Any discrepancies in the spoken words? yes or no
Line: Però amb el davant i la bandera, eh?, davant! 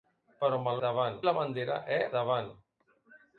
no